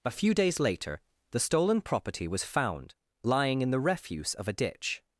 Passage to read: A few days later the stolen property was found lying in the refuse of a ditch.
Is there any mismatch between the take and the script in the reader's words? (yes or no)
no